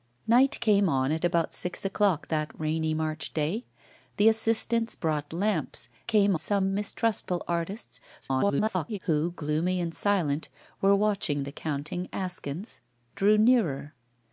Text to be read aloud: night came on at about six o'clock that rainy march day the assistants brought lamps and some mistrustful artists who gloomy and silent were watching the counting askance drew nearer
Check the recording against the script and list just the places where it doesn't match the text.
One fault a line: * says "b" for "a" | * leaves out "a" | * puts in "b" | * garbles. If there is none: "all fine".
* says "came" for "and"
* garbles